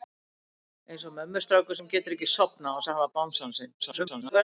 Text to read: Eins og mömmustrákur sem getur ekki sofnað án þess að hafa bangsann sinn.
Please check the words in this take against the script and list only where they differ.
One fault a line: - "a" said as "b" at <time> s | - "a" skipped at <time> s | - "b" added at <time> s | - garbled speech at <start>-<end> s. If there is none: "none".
- garbled speech at 3.8-4.4 s